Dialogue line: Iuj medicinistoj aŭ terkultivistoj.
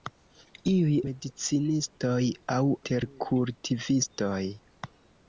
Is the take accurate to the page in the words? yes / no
yes